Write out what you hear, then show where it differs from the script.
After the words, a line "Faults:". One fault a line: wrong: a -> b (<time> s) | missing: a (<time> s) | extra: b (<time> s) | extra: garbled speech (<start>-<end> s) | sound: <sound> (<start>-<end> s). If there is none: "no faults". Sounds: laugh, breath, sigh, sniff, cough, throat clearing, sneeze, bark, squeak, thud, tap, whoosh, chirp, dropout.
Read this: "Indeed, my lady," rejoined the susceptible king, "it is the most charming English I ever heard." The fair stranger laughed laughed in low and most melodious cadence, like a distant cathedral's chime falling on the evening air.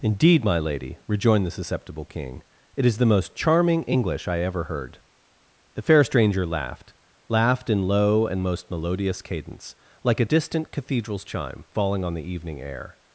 "Indeed, my lady," rejoined the susceptible king, "it is the most charming English I ever heard." The fair stranger laughed laughed in low and most melodious cadence, like a distant cathedral's chime falling on the evening air.
Faults:
no faults